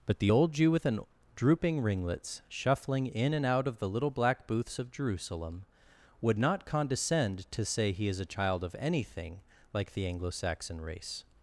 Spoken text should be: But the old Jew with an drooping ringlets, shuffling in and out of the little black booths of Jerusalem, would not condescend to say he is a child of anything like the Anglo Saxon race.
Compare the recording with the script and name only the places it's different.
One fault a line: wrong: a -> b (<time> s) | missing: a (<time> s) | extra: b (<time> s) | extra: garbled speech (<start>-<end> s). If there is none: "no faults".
no faults